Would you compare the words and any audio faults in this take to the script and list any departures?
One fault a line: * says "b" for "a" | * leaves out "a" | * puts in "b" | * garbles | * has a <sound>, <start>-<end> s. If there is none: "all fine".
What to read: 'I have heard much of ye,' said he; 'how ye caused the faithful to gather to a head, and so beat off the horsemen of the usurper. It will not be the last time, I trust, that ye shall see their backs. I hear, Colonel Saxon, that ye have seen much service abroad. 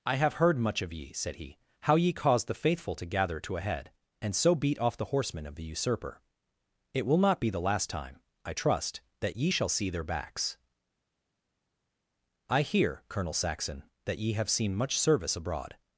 all fine